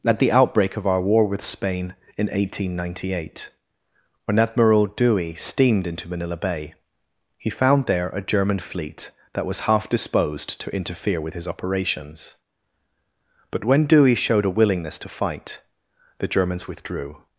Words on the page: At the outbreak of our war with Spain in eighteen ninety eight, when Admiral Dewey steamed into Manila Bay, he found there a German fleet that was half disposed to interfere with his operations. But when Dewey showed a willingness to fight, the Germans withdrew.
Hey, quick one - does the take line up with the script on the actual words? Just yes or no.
yes